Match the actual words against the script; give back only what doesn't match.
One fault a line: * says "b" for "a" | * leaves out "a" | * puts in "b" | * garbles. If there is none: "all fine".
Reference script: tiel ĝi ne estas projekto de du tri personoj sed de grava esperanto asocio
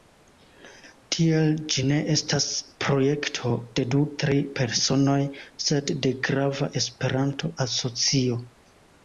all fine